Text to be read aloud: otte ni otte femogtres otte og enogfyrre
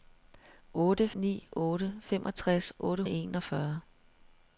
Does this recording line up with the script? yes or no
yes